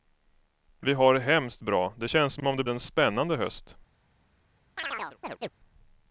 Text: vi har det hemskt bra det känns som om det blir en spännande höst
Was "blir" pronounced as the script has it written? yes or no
no